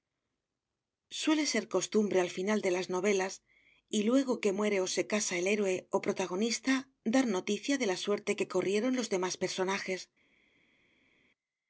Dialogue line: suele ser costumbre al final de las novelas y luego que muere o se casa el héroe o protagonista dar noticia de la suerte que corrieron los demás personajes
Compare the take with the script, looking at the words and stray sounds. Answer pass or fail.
pass